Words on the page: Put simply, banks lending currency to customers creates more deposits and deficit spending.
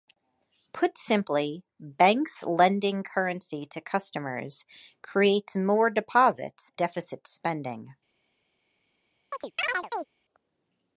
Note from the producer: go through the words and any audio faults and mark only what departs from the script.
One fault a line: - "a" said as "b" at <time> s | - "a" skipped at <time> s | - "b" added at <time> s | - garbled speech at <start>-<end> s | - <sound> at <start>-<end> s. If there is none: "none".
- "and" skipped at 6.7 s
- chirp at 9.3-10.1 s